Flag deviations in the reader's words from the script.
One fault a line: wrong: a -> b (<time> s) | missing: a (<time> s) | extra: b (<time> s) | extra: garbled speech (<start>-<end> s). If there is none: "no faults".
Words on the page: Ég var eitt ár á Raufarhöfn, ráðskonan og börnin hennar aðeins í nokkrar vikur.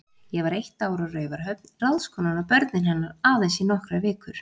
no faults